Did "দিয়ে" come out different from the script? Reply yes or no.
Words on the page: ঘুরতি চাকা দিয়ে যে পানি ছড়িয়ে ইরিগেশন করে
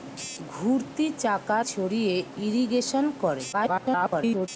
yes